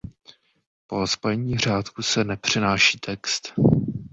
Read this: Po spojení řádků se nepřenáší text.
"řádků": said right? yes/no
yes